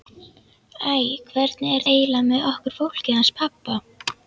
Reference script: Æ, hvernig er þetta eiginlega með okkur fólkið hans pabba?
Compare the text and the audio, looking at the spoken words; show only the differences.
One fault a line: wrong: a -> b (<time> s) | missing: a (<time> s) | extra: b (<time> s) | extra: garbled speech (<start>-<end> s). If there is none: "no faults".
missing: þetta (1.9 s)